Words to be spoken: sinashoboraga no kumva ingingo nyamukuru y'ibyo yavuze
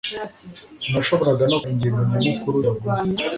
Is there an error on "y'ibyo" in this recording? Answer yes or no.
yes